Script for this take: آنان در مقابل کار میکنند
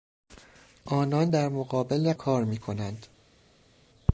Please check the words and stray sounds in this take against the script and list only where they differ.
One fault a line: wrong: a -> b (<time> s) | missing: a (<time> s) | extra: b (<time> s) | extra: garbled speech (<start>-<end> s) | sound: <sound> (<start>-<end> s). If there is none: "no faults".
no faults